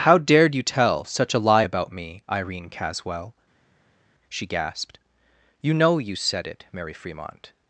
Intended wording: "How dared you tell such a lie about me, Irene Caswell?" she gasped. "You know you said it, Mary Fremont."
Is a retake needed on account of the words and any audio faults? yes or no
no